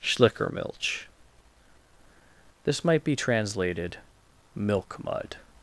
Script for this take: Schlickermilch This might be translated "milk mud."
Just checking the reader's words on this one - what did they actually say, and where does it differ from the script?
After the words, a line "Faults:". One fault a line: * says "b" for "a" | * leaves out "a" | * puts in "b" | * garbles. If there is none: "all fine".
Schlickermilch This might be translated "milk mud."
Faults:
all fine